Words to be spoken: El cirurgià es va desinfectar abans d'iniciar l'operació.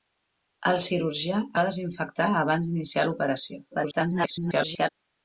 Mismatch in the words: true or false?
true